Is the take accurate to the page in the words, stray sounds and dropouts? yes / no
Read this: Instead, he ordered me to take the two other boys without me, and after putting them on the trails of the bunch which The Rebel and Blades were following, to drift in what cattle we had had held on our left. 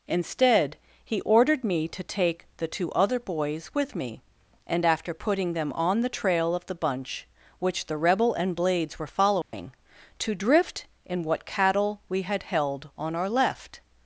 no